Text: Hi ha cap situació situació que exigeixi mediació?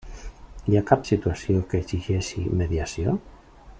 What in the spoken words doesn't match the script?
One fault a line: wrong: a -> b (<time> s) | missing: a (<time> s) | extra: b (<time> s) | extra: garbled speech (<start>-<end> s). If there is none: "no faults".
missing: situació (1.6 s)